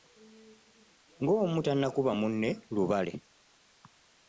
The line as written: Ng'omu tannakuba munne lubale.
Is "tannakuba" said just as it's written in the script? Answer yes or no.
yes